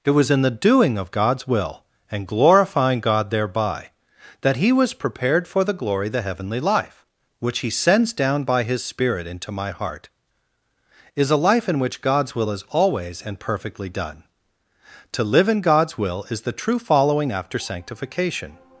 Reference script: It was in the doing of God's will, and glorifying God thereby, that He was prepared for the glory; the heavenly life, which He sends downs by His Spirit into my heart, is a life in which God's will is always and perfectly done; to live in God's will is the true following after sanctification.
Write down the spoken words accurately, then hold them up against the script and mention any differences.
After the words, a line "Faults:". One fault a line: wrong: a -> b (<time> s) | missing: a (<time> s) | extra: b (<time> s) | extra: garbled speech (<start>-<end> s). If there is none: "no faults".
It was in the doing of God's will, and glorifying God thereby, that He was prepared for the glory; the heavenly life, which He sends down by His Spirit into my heart, is a life in which God's will is always and perfectly done; to live in God's will is the true following after sanctification.
Faults:
wrong: downs -> down (8.1 s)